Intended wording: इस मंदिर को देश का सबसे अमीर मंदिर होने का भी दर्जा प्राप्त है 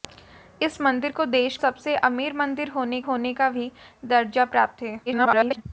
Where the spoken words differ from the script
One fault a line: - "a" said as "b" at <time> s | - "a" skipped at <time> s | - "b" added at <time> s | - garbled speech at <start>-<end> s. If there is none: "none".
- "का" skipped at 1.6 s
- "होने" added at 3.0 s
- garbled speech at 5.1-5.6 s